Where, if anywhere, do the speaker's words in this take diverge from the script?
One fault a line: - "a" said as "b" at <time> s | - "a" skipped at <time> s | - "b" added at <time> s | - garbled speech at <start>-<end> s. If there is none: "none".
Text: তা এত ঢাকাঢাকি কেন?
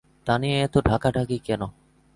- "নিয়ে" added at 0.4 s